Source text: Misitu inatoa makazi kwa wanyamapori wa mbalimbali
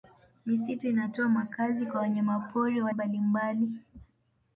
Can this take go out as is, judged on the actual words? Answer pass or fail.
pass